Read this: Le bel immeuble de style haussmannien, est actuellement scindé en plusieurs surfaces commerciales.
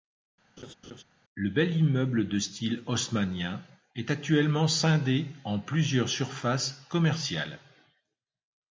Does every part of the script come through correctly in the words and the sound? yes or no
no